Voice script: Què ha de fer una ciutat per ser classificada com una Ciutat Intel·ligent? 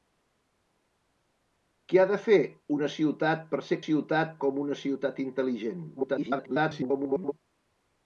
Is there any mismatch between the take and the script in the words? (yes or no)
yes